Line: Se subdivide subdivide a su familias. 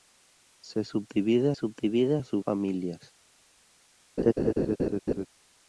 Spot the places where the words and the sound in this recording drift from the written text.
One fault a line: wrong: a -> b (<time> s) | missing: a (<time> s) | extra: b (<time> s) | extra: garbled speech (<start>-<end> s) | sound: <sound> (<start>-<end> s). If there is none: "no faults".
sound: laugh (4.2-5.3 s)